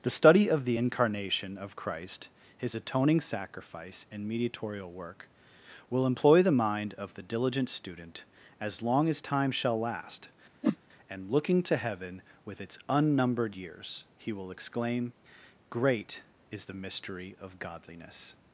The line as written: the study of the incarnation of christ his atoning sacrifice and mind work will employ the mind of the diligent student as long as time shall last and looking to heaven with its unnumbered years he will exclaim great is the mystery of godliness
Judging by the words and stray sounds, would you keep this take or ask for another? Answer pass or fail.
fail